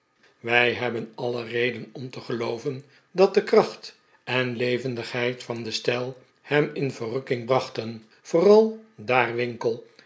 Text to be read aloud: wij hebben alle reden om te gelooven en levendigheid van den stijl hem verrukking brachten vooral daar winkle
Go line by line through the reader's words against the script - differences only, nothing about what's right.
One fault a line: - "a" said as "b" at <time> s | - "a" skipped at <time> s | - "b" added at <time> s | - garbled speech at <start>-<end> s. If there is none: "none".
- "dat de kracht" added at 3.1 s
- "in" added at 6.7 s